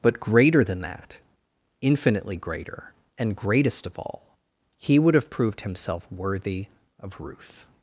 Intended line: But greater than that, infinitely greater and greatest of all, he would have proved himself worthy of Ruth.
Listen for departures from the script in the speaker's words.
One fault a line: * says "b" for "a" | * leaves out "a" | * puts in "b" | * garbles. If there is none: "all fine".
all fine